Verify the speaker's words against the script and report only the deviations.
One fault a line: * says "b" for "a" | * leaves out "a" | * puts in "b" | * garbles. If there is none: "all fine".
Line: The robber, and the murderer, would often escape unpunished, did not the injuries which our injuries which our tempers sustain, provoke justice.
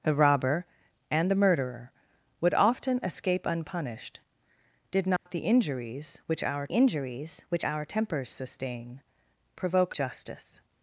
all fine